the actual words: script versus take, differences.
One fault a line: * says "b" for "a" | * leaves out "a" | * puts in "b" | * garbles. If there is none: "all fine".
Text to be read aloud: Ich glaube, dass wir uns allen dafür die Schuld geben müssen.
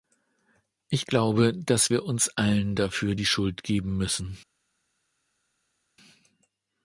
all fine